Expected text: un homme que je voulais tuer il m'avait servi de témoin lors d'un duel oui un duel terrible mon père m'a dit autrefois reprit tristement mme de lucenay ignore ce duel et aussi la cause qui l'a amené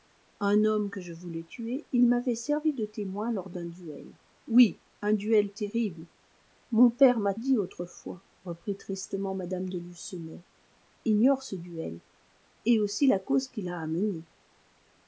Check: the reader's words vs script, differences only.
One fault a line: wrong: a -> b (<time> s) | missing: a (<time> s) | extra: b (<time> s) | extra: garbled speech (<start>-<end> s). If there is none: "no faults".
no faults